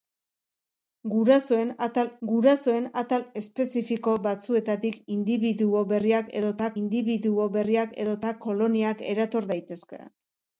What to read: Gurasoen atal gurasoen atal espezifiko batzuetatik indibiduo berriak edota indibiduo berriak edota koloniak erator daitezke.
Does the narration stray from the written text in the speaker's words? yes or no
no